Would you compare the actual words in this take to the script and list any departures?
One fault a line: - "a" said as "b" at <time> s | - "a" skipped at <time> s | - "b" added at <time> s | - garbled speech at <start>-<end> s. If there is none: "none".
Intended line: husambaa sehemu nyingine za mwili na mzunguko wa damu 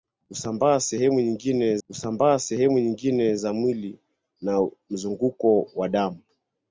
- "husambaa sehemu nyingine" added at 1.9 s